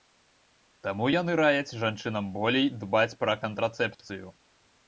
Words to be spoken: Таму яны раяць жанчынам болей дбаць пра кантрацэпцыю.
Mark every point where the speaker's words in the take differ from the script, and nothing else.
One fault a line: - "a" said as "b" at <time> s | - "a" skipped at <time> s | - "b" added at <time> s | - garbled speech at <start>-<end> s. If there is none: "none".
none